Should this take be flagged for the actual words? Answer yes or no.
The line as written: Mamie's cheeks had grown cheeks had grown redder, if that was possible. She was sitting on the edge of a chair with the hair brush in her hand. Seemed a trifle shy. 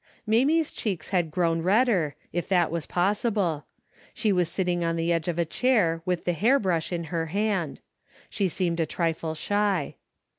yes